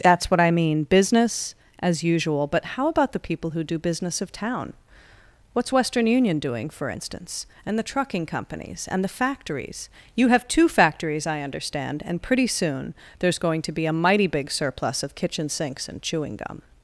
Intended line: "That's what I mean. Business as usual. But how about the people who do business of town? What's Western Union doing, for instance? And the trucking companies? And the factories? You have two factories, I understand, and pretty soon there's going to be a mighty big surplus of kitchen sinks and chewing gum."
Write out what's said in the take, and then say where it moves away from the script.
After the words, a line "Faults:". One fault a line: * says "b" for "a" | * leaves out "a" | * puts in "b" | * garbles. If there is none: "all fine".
"That's what I mean. Business as usual. But how about the people who do business of town? What's Western Union doing, for instance? And the trucking companies? And the factories? You have two factories, I understand, and pretty soon there's going to be a mighty big surplus of kitchen sinks and chewing gum."
Faults:
all fine